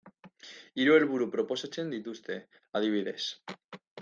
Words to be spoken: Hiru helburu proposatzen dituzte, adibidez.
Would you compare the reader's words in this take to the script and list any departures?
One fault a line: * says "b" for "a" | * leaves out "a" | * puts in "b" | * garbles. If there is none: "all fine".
all fine